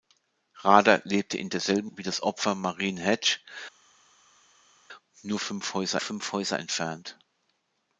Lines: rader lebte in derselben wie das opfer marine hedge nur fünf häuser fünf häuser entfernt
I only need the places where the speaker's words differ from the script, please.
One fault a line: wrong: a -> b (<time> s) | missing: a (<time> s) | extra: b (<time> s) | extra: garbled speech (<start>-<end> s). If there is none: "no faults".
no faults